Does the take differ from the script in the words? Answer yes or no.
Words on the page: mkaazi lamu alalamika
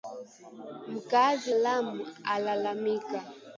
no